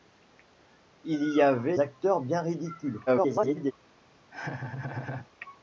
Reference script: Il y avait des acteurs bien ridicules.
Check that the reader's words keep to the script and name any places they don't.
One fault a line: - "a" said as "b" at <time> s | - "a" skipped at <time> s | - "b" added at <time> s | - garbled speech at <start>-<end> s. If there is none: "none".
- "des" skipped at 1.8 s
- garbled speech at 3.1-3.7 s